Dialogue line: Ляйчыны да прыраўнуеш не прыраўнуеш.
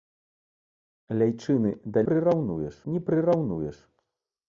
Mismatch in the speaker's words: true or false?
false